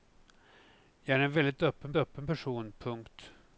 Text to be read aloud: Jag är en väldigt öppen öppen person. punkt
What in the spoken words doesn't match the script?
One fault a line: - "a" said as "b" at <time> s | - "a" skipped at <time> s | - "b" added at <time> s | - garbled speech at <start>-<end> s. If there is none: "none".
none